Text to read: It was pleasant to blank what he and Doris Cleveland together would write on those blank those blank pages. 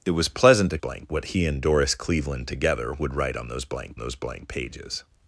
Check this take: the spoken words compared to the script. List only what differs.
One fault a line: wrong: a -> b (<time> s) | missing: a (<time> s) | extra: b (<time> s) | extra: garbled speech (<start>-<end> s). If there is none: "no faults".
no faults